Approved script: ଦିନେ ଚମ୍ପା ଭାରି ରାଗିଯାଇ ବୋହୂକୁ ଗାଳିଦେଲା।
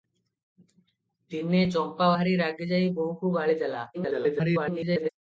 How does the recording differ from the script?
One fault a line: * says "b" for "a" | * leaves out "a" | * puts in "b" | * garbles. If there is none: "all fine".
* garbles